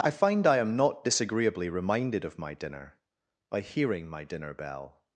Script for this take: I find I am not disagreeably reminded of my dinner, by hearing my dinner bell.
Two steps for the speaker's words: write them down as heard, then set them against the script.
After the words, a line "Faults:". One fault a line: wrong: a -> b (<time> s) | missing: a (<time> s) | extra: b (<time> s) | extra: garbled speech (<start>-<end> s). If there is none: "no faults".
I find I am not disagreeably reminded of my dinner, by hearing my dinner bell.
Faults:
no faults